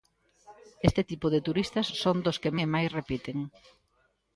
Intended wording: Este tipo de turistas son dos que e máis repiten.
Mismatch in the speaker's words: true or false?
false